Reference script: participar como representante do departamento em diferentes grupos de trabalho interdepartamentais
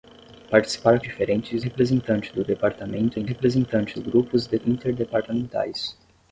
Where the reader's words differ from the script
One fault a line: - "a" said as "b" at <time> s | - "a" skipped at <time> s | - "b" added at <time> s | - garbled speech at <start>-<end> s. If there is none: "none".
- "como" said as "diferentes" at 1.0 s
- "diferentes" said as "representante" at 3.2 s
- "trabalho" skipped at 4.6 s